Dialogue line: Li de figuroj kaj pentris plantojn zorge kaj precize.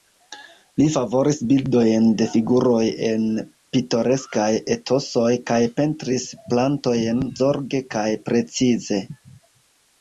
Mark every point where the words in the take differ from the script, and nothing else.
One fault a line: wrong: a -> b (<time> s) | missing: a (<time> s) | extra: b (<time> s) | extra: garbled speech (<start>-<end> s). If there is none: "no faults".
extra: favoris bildojn (0.9 s)
extra: en pitoreskaj etosoj (3.1 s)